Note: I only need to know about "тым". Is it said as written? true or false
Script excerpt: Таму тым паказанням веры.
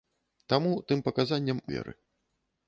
true